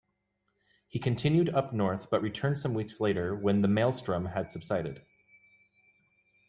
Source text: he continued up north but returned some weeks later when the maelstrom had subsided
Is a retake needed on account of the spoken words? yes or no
no